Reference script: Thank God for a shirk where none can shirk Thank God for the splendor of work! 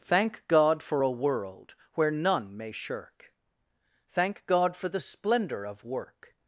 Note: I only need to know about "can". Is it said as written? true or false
false